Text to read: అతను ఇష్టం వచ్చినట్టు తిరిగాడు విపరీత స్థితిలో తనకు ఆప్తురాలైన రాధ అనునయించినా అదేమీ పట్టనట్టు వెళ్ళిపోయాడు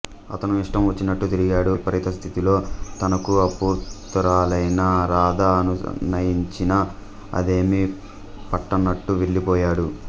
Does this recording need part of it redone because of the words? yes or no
no